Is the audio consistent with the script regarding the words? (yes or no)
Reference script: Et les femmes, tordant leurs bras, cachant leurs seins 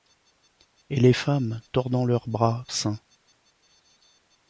no